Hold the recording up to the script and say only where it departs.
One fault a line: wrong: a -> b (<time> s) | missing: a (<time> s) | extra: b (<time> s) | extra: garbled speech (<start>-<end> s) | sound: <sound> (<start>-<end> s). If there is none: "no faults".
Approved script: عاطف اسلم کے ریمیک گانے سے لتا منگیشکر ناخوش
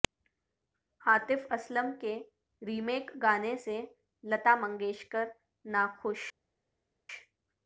no faults